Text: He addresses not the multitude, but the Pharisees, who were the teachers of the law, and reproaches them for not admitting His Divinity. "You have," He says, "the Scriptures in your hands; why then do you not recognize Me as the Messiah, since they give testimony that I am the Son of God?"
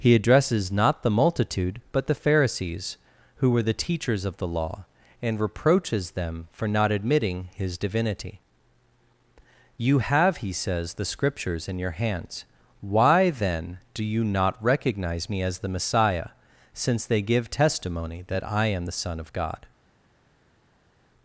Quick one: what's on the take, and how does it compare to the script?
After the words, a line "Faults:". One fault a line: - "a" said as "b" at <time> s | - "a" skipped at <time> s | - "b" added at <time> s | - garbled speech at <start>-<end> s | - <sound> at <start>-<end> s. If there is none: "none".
He addresses not the multitude, but the Pharisees, who were the teachers of the law, and reproaches them for not admitting His Divinity. "You have," He says, "the Scriptures in your hands; why then do you not recognize Me as the Messiah, since they give testimony that I am the Son of God?"
Faults:
none